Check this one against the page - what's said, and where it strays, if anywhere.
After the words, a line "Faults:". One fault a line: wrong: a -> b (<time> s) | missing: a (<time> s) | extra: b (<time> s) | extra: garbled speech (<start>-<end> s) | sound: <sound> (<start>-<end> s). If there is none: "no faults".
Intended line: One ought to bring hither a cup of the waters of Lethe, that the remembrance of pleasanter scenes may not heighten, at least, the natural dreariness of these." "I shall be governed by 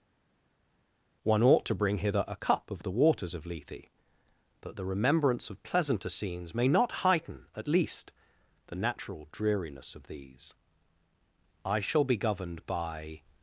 One ought to bring hither a cup of the waters of Lethe, that the remembrance of pleasanter scenes may not heighten, at least, the natural dreariness of these." "I shall be governed by
Faults:
no faults